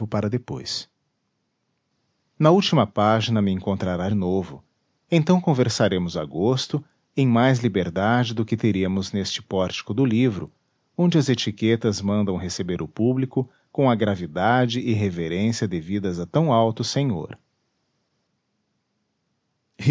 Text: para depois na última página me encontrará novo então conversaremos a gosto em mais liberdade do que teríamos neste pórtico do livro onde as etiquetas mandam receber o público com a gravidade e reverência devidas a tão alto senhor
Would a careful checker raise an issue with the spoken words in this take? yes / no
no